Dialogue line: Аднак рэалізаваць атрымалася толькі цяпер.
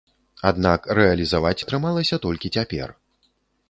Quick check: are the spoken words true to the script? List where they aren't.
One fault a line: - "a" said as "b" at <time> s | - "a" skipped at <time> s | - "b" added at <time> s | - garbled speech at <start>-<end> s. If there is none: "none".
none